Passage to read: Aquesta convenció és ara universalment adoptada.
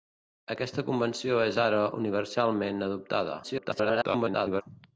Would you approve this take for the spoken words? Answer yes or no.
no